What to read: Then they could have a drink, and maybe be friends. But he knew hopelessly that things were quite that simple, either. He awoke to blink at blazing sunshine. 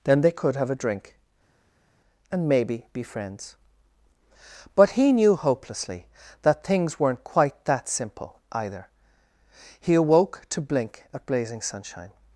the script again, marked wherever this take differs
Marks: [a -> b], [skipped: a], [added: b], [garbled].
Then they could have a drink, and maybe be friends. But he knew hopelessly that things [were -> weren't] quite that simple, either. He awoke to blink at blazing sunshine.